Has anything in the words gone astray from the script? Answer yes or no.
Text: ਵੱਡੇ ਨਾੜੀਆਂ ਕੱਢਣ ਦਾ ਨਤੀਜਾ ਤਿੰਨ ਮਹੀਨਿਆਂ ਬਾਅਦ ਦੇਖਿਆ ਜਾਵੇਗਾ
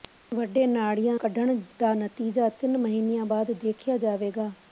no